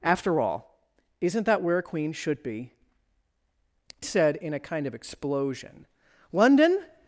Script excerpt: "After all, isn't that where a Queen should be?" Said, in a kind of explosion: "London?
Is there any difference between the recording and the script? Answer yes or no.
no